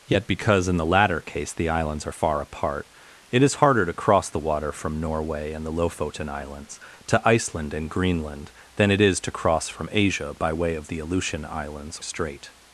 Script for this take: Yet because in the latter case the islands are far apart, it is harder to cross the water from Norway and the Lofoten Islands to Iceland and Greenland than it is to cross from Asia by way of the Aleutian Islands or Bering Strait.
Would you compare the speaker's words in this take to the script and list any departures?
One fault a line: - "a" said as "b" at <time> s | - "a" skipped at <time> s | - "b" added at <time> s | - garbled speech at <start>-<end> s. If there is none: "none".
- "or Bering" skipped at 12.0 s